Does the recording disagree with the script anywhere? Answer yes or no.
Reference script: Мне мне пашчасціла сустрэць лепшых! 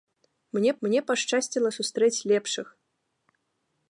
no